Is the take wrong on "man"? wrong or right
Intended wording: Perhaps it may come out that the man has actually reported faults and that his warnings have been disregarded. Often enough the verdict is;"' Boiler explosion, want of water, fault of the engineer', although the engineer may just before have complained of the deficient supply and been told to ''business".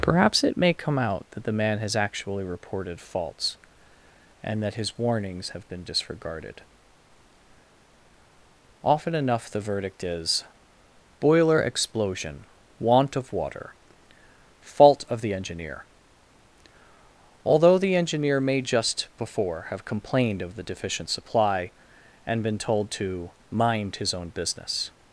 right